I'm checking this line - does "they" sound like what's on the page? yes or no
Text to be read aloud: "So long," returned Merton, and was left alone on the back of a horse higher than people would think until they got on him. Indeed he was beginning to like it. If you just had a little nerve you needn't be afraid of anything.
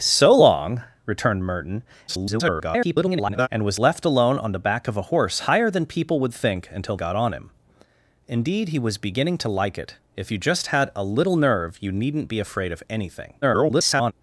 no